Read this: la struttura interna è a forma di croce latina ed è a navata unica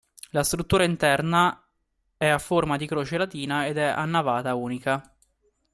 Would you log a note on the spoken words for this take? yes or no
no